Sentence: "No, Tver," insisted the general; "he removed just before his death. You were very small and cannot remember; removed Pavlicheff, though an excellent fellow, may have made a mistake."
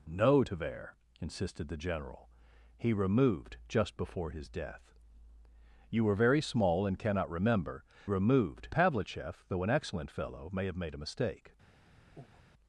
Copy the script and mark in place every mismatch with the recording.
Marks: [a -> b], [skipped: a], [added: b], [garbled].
"No, Tver," insisted the general; "he removed just before his death. You were very small and cannot remember; removed Pavlicheff, though an excellent fellow, may have made a mistake."